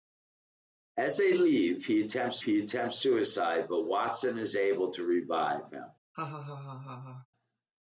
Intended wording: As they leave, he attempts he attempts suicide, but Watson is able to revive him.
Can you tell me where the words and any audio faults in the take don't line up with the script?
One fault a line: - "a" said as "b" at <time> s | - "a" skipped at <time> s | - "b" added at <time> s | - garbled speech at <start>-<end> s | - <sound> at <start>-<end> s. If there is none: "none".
- laugh at 6.1-7.3 s